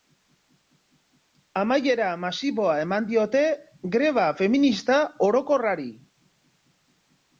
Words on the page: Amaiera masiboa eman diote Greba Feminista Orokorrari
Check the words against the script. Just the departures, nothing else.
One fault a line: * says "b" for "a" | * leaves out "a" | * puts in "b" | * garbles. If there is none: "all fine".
all fine